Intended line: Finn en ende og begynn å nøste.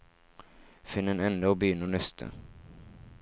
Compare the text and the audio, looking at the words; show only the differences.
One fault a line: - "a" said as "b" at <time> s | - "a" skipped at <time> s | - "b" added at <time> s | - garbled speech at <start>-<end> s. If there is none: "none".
none